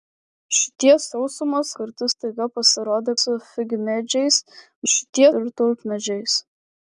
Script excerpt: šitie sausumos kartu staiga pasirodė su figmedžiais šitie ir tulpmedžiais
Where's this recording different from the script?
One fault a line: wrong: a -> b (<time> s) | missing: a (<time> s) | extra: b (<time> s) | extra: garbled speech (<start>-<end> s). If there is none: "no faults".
no faults